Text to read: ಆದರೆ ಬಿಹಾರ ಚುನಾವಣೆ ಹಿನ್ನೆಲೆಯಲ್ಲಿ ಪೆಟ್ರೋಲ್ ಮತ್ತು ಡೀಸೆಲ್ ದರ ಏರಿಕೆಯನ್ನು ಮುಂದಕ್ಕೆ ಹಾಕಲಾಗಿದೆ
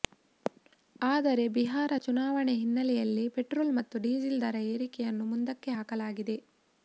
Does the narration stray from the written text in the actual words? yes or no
no